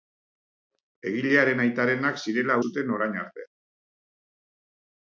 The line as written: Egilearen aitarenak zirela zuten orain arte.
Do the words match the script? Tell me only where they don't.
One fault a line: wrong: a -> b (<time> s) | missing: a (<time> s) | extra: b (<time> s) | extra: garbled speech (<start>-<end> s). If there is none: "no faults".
no faults